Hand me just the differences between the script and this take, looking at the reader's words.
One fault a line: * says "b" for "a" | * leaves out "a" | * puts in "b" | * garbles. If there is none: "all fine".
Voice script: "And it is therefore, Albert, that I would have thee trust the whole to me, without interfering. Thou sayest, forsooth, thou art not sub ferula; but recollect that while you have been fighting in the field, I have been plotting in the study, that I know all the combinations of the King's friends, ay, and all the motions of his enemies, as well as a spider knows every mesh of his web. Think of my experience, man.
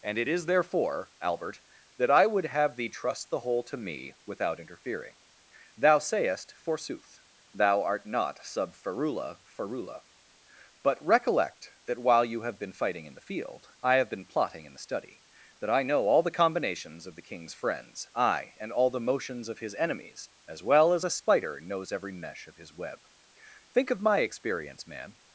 * puts in "ferula"